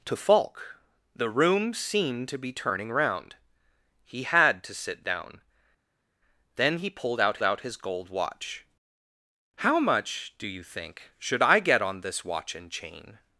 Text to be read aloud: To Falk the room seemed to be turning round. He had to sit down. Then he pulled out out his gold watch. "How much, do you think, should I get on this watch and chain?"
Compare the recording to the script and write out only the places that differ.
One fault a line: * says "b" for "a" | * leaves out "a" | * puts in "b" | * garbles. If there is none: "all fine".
all fine